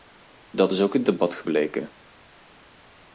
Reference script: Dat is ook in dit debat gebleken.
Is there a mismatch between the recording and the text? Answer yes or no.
yes